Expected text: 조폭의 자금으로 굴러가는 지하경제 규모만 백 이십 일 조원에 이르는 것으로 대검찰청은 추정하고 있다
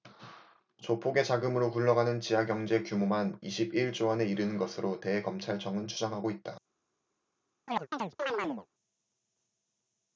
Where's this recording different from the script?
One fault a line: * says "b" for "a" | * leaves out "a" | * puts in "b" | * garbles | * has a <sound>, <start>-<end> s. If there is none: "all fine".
* leaves out "백"
* has a chirp, 7.7-8.7 s